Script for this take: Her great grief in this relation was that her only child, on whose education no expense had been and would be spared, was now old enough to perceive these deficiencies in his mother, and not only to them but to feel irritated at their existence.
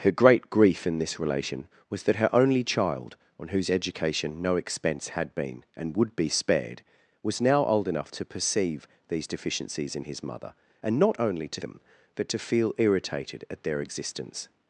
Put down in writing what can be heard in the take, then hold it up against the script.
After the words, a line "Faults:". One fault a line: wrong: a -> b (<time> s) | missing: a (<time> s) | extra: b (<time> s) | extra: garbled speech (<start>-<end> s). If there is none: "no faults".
Her great grief in this relation was that her only child, on whose education no expense had been and would be spared, was now old enough to perceive these deficiencies in his mother, and not only to them but to feel irritated at their existence.
Faults:
no faults